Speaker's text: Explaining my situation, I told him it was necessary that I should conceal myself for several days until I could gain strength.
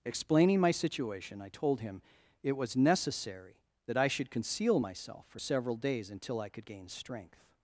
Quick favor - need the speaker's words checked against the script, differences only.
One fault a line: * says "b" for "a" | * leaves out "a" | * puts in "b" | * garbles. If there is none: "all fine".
all fine